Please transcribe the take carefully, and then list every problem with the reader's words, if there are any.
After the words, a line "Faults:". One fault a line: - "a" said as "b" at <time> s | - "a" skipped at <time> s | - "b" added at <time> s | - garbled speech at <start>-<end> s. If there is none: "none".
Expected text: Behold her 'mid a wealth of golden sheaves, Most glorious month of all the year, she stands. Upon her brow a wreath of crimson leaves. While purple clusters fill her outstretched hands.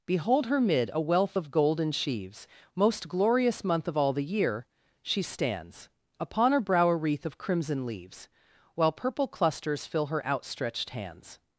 Behold her 'mid a wealth of golden sheaves, Most glorious month of all the year, she stands. Upon her brow a wreath of crimson leaves. While purple clusters fill her outstretched hands.
Faults:
none